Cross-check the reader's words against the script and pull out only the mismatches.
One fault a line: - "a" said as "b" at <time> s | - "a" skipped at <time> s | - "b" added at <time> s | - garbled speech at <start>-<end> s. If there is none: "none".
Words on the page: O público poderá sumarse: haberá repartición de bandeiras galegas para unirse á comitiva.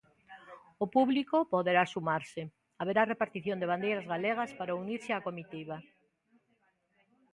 none